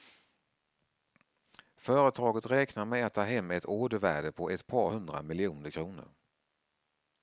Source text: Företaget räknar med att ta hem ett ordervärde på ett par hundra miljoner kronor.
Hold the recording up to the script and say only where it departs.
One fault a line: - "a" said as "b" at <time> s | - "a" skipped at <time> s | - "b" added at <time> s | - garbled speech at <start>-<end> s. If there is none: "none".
none